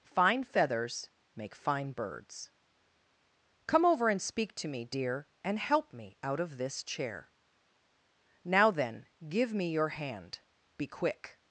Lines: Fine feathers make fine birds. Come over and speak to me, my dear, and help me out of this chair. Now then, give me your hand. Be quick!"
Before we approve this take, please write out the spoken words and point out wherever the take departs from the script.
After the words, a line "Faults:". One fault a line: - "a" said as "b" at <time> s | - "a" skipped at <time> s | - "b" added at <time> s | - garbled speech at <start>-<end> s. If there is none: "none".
Fine feathers make fine birds. Come over and speak to me, dear, and help me out of this chair. Now then, give me your hand. Be quick!"
Faults:
- "my" skipped at 4.8 s